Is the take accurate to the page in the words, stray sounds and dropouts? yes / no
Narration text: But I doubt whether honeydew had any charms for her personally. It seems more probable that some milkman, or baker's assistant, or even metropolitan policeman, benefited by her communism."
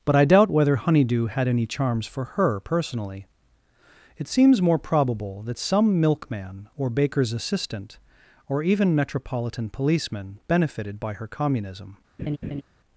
no